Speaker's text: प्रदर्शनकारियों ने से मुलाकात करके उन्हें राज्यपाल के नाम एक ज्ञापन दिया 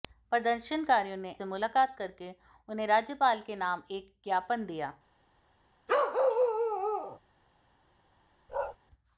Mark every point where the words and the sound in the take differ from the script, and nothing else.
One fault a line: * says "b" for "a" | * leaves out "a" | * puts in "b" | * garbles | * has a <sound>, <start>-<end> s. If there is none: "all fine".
* has a bark, 5.9-7.2 s
* has a bark, 8.5-8.8 s